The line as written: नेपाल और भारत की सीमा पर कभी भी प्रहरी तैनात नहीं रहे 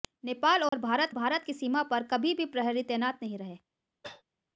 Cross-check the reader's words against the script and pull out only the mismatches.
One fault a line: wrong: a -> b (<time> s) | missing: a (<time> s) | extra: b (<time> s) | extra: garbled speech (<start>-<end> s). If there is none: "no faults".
extra: भारत (1.1 s)